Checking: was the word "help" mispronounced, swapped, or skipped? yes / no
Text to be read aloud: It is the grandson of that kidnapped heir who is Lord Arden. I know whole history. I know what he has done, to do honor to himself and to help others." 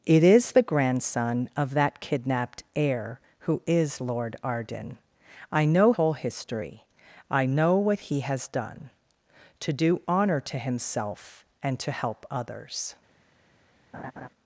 no